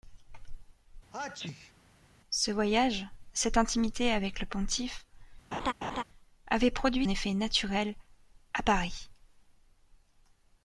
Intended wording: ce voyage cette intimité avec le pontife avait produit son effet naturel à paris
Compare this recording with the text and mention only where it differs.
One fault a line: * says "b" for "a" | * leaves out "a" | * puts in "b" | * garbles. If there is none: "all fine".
* leaves out "son"